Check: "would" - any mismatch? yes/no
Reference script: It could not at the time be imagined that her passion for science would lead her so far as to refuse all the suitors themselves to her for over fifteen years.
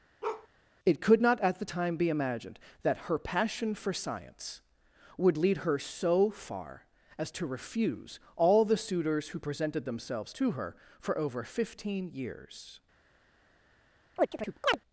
no